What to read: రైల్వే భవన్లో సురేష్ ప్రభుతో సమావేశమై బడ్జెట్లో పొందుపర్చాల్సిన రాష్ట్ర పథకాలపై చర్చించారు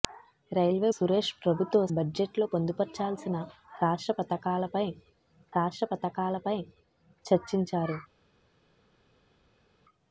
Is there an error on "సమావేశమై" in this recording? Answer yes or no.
yes